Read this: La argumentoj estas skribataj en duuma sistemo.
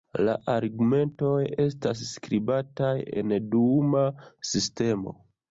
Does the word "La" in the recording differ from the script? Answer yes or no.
no